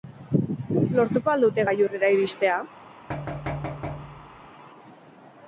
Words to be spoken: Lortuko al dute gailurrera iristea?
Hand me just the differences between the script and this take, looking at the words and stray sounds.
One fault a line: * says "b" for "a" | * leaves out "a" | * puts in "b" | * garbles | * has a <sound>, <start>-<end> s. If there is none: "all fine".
* has a thud, 3.1-4.5 s